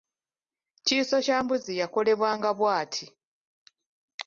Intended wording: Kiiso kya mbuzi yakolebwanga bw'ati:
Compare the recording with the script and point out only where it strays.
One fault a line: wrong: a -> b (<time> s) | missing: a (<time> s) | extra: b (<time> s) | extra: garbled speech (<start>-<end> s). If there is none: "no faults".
no faults